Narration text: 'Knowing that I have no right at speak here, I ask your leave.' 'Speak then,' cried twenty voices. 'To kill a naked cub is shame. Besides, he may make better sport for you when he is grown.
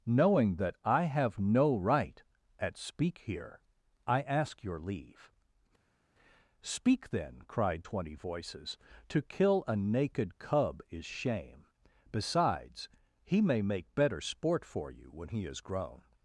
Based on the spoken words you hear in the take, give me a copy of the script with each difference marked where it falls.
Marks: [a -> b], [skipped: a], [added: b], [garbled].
'Knowing that I have no right at speak here, I ask your leave.' 'Speak then,' cried twenty voices. 'To kill a naked cub is shame. Besides, he may make better sport for you when he is grown.